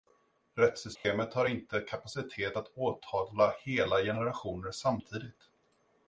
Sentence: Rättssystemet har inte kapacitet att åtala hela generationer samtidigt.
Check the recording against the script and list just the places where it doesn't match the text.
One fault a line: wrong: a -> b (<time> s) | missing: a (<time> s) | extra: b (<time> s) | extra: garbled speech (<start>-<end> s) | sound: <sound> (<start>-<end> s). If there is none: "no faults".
sound: dropout (1.0-1.0 s)